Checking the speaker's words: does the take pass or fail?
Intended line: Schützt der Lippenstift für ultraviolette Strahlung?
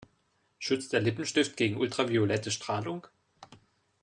fail